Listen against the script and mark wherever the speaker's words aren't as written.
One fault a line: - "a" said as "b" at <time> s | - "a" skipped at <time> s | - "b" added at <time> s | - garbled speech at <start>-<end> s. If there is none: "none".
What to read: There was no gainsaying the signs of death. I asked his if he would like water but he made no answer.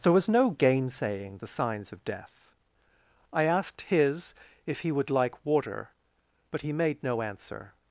none